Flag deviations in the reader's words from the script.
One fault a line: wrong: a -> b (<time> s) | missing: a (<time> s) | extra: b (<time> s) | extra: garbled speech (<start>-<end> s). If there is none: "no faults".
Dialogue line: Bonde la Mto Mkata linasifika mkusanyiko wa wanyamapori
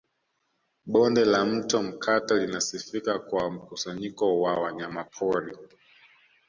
extra: kwa (3.2 s)